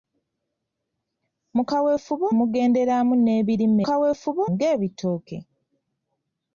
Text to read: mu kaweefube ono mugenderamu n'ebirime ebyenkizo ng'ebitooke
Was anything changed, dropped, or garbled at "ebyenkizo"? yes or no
yes